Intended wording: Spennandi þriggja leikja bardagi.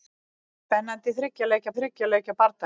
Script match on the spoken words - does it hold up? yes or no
no